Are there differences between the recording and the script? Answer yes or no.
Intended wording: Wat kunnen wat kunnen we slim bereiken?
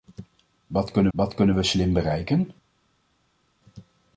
no